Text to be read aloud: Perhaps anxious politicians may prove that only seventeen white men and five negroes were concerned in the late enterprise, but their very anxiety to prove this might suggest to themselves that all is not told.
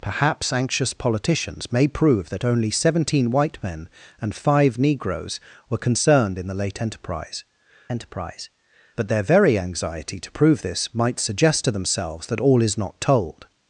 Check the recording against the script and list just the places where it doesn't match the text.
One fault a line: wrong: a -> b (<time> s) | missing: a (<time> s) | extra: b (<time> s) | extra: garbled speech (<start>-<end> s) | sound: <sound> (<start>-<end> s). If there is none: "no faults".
extra: enterprise (7.9 s)